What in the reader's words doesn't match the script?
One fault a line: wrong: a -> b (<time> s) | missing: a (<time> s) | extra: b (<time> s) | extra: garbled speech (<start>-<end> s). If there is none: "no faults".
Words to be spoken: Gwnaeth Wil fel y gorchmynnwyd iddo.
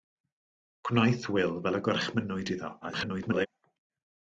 extra: garbled speech (2.8-3.5 s)